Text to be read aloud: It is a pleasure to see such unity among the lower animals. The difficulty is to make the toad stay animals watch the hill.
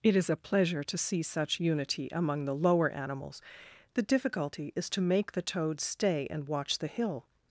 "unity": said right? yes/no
yes